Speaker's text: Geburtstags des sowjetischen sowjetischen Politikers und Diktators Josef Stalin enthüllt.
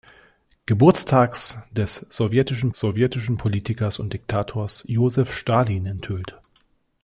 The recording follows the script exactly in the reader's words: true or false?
true